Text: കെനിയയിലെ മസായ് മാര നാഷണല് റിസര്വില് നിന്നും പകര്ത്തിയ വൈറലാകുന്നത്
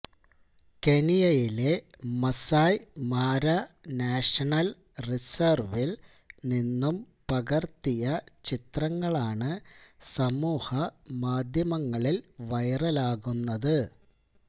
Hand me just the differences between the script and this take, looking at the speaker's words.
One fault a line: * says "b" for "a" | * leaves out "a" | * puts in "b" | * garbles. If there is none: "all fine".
* puts in "ചിത്രങ്ങളാണ് സമൂഹ മാധ്യമങ്ങളില്"